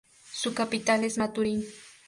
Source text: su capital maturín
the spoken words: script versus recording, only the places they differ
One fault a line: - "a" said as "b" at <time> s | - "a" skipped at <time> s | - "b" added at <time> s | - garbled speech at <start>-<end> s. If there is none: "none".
- "es" added at 1.0 s